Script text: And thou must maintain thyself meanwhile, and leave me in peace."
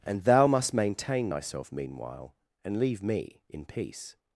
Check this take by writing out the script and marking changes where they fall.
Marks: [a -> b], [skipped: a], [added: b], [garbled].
And thou must maintain thyself meanwhile, and leave me in peace."